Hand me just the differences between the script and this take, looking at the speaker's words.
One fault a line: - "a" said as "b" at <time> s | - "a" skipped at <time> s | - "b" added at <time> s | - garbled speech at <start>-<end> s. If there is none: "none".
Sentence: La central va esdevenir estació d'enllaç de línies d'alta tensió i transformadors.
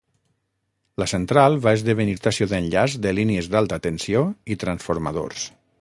none